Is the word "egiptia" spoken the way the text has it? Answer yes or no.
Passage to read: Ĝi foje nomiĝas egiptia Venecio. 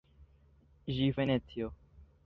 no